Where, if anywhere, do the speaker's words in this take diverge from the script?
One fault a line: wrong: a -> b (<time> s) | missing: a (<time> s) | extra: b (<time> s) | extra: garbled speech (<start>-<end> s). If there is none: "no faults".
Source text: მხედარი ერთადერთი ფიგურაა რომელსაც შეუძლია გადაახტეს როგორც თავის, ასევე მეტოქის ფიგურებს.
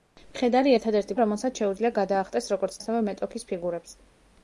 missing: ფიგურაა (1.2 s)
missing: თავის (2.8 s)